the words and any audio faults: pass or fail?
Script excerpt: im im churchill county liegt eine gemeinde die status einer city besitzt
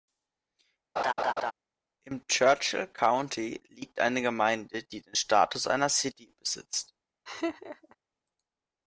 fail